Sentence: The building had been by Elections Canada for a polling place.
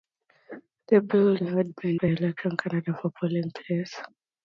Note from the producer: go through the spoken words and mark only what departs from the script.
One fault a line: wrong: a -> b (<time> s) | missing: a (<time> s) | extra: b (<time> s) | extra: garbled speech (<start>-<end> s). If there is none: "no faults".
no faults